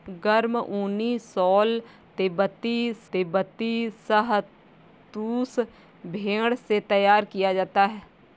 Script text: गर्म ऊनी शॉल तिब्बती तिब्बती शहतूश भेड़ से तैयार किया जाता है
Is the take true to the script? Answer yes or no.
yes